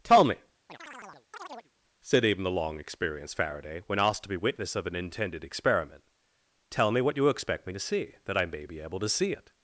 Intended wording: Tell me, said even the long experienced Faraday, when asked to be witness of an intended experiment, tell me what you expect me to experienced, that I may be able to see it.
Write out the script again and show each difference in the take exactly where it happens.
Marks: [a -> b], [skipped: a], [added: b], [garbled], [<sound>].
Tell me, [chirp] said even the long experienced Faraday, when asked to be witness of an intended experiment, tell me what you expect me to [experienced, -> see] that I may be able to see it.